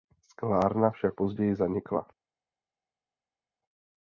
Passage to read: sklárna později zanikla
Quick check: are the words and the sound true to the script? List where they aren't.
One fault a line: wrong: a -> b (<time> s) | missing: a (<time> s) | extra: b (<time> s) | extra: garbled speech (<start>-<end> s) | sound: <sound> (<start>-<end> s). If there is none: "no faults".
extra: však (0.9 s)